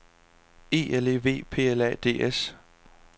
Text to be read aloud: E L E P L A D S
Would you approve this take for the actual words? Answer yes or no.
no